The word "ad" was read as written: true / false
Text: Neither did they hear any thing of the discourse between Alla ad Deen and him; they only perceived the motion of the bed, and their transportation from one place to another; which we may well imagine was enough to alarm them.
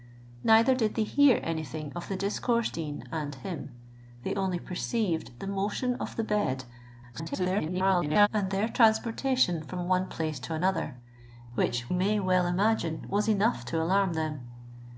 false